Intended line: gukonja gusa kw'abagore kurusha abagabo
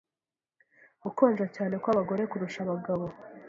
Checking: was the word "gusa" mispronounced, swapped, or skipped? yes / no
yes